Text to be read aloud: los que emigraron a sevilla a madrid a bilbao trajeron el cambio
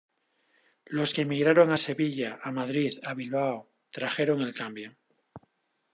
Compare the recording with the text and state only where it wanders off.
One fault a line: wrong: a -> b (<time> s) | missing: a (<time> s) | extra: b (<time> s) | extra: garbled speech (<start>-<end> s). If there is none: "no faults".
no faults